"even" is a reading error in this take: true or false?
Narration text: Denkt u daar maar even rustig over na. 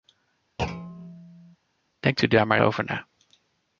true